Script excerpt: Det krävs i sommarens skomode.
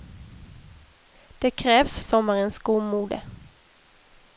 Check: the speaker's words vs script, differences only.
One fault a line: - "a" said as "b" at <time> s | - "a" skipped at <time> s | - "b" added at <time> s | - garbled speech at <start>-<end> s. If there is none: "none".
none